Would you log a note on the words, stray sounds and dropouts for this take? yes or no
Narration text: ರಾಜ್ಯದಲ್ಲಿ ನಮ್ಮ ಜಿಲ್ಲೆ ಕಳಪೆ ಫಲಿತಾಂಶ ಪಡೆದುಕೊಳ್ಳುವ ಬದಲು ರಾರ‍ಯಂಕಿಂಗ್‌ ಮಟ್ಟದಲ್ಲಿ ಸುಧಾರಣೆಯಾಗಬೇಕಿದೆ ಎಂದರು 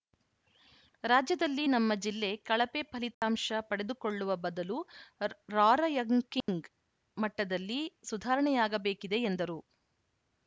yes